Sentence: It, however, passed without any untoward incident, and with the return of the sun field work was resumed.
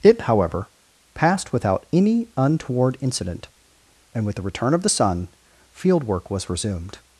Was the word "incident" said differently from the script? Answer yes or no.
no